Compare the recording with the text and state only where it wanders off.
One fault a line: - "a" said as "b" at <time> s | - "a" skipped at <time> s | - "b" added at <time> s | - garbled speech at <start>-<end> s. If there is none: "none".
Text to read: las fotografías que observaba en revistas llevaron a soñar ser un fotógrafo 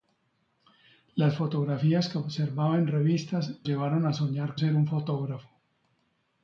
none